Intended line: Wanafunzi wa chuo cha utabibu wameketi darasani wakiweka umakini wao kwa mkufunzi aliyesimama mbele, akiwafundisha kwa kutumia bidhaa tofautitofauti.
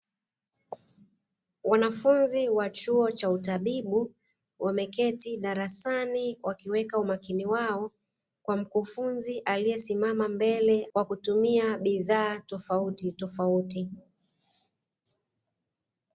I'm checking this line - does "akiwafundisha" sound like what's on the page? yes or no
no